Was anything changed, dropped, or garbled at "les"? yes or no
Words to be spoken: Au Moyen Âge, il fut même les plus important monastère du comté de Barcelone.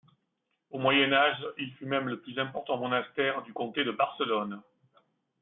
yes